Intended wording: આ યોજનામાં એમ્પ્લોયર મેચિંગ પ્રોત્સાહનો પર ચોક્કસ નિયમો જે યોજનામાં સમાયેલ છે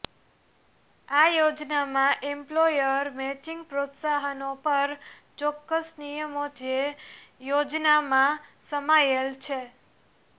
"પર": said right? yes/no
yes